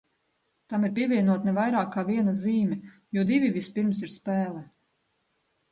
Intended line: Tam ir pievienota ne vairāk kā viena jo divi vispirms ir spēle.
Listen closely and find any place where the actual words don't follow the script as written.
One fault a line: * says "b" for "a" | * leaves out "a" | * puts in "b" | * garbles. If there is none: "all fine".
* puts in "zīme"